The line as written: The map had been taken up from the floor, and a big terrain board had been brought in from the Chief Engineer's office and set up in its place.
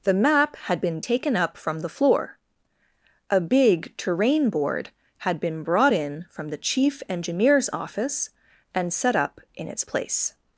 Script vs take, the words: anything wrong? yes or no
yes